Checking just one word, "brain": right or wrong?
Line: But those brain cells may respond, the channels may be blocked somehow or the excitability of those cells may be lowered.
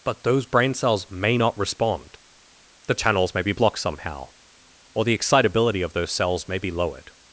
right